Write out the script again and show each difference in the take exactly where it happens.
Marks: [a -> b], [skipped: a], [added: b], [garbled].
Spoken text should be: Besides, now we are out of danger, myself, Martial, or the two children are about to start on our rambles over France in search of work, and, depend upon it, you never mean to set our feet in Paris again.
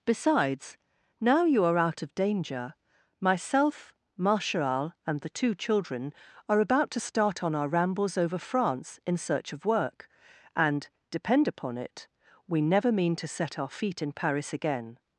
Besides, now [we -> you] are out of danger, myself, Martial, [or -> and] the two children are about to start on our rambles over France in search of work, and, depend upon it, [you -> we] never mean to set our feet in Paris again.